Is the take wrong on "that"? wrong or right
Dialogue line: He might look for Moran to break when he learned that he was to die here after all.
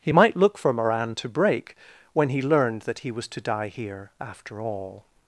right